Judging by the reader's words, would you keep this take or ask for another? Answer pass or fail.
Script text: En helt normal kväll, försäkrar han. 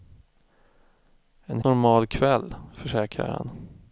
fail